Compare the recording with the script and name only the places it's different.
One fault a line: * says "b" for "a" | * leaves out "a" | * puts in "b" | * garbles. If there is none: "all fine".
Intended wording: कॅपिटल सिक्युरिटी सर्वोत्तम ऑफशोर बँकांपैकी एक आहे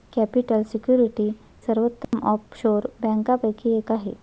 all fine